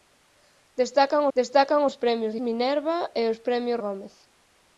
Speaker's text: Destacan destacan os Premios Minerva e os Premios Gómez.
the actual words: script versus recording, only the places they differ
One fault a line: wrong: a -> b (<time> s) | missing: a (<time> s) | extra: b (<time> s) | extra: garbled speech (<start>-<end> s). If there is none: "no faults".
no faults